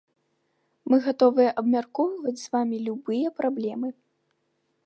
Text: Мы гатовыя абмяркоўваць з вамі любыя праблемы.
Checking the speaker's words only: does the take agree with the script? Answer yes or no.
yes